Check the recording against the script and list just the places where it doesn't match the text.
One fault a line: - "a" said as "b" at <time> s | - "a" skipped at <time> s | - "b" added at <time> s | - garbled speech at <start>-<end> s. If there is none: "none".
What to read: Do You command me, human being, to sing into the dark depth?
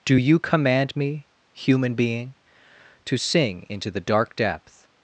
none